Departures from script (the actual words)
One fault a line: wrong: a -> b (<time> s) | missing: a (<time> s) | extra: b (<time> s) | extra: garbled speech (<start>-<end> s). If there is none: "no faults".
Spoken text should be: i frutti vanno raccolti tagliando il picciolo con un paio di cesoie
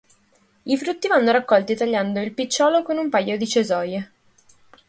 no faults